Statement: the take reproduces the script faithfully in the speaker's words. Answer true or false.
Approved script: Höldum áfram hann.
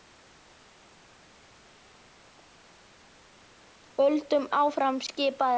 false